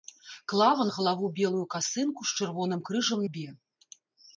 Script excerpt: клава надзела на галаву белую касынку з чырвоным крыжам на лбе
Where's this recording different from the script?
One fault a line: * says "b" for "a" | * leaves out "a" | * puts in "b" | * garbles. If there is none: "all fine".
* leaves out "надзела"
* leaves out "на"